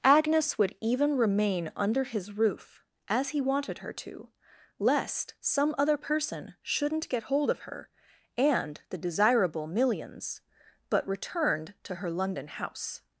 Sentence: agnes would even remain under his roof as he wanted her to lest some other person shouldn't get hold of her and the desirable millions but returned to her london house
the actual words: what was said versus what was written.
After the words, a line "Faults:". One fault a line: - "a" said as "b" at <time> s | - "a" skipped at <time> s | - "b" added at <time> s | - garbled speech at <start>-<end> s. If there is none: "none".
agnes would even remain under his roof as he wanted her to lest some other person shouldn't get hold of her and the desirable millions but returned to her london house
Faults:
none